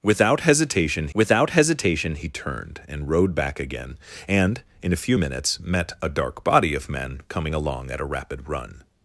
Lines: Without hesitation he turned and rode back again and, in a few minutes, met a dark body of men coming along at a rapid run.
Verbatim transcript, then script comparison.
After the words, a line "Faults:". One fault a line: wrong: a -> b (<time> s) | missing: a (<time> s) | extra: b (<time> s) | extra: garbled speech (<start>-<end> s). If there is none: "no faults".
Without hesitation without hesitation he turned and rode back again and, in a few minutes, met a dark body of men coming along at a rapid run.
Faults:
extra: without hesitation (1.1 s)